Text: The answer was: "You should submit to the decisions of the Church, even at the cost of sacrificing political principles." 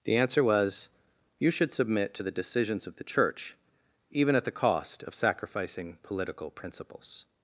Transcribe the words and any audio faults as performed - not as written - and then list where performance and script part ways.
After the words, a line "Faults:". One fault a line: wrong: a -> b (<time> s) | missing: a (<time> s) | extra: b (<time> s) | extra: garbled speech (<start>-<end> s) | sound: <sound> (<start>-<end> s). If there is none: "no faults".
The answer was: "You should submit to the decisions of the Church, even at the cost of sacrificing political principles."
Faults:
no faults